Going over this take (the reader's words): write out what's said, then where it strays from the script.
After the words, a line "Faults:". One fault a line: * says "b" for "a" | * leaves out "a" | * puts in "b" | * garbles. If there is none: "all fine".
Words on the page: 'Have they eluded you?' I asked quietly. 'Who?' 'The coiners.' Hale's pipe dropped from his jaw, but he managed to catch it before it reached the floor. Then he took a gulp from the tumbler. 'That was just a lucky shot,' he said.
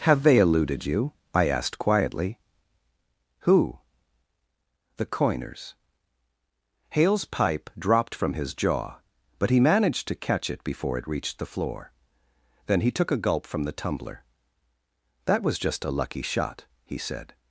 'Have they eluded you?' I asked quietly. 'Who?' 'The coiners.' Hale's pipe dropped from his jaw, but he managed to catch it before it reached the floor. Then he took a gulp from the tumbler. 'That was just a lucky shot,' he said.
Faults:
all fine